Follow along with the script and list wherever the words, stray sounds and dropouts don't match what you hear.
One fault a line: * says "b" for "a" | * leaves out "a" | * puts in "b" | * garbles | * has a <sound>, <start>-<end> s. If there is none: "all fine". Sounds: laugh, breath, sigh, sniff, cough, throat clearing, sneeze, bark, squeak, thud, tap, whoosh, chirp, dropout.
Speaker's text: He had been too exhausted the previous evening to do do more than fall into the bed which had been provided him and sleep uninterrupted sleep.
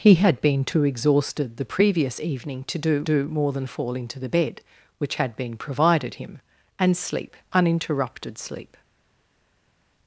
all fine